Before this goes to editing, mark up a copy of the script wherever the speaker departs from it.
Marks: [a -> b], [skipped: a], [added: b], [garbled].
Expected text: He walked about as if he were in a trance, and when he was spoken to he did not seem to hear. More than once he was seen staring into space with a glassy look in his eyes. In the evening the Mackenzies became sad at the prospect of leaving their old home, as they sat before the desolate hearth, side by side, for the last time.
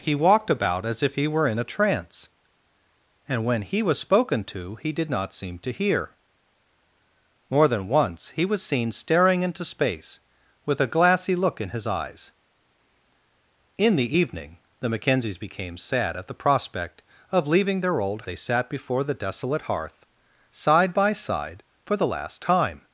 He walked about as if he were in a trance, and when he was spoken to he did not seem to hear. More than once he was seen staring into space with a glassy look in his eyes. In the evening the Mackenzies became sad at the prospect of leaving their old [skipped: home, as] they sat before the desolate hearth, side by side, for the last time.